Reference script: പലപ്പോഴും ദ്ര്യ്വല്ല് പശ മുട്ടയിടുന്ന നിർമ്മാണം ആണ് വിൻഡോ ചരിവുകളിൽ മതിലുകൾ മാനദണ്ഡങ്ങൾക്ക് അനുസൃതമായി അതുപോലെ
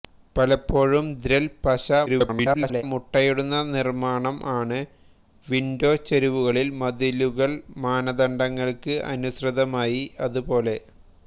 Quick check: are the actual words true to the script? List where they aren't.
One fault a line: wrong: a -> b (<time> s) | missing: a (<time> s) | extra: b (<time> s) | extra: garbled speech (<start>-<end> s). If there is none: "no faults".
extra: garbled speech (2.1-2.8 s)